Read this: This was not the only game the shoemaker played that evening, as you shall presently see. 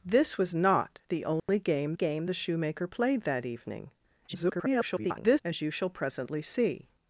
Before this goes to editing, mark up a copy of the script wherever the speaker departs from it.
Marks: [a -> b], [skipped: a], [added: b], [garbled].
This was not the only game [added: game] the shoemaker played that evening, [garbled] as you shall presently see.